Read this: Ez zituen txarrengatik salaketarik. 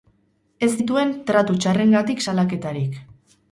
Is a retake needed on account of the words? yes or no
yes